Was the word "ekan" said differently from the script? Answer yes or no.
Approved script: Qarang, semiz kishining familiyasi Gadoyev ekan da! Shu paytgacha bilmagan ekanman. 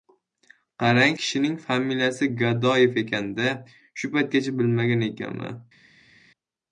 no